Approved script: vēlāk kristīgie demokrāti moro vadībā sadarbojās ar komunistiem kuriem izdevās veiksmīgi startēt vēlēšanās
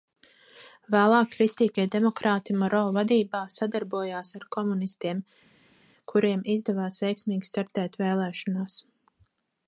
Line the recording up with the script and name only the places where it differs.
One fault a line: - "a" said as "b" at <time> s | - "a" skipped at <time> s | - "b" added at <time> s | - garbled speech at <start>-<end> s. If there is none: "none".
none